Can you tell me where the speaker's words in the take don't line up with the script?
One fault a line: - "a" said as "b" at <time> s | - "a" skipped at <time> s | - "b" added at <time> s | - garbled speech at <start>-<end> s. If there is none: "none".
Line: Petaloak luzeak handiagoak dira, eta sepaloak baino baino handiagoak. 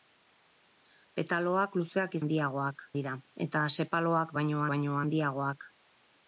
none